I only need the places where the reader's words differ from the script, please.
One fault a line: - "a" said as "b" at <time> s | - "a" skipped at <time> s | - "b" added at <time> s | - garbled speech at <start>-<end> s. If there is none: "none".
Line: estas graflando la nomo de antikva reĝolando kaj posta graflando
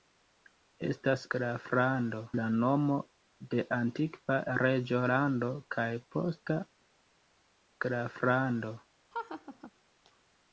none